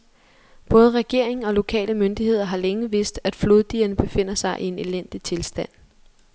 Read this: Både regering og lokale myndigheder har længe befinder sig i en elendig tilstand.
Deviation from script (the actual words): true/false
true